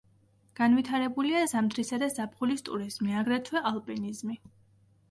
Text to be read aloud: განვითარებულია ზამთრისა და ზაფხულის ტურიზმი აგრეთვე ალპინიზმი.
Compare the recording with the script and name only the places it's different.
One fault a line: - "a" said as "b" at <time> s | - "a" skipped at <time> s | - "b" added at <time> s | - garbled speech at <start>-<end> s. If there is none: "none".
none